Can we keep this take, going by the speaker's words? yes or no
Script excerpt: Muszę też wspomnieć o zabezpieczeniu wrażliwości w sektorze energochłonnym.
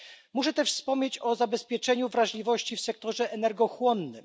yes